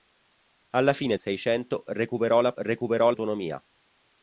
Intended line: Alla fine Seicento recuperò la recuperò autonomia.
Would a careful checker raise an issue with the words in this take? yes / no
no